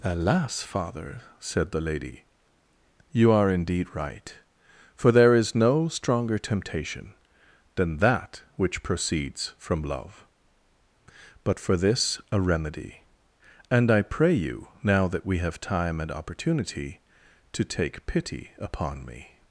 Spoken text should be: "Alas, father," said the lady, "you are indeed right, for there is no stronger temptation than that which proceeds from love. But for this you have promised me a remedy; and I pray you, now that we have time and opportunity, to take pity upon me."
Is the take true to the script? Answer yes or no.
no